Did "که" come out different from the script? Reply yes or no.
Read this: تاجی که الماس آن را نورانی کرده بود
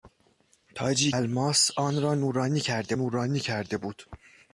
yes